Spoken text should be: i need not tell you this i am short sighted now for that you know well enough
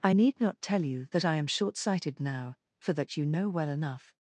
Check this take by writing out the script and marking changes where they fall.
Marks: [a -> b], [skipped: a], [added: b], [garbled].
i need not tell you [this -> that] i am short sighted now for that you know well enough